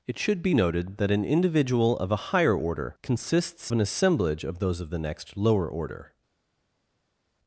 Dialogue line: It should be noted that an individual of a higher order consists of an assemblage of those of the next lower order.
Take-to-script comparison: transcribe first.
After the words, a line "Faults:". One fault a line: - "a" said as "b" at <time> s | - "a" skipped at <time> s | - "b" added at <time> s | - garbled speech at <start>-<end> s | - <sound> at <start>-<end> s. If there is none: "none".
It should be noted that an individual of a higher order consists an assemblage of those of the next lower order.
Faults:
- "of" skipped at 3.7 s